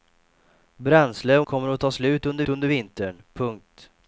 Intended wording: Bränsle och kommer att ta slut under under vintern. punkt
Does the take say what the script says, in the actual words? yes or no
yes